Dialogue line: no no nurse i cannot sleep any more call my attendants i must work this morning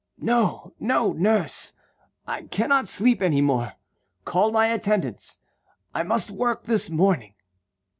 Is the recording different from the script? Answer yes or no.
no